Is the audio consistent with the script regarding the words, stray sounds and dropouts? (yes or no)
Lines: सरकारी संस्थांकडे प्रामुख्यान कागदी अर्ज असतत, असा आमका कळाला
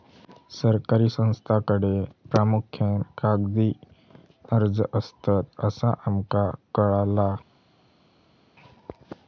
yes